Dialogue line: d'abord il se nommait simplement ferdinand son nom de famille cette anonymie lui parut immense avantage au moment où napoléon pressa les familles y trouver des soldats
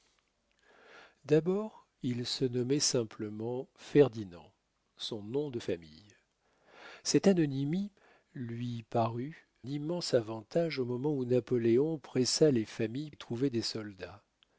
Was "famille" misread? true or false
false